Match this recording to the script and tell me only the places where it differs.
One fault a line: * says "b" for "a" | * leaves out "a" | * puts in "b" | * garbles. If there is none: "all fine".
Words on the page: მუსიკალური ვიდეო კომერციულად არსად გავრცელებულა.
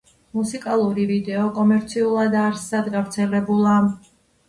all fine